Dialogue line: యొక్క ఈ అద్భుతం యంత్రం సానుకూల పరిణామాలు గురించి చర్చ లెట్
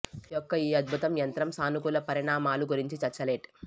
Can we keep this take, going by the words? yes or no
yes